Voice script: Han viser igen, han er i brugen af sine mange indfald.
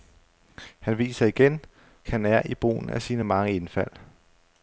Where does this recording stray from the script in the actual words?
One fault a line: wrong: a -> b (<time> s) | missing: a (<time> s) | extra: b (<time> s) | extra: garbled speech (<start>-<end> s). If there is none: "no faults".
no faults